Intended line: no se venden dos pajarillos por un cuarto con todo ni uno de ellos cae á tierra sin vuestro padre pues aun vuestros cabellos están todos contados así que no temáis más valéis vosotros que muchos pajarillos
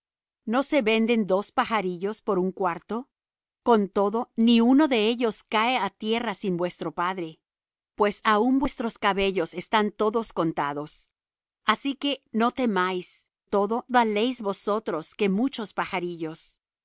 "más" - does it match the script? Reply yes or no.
no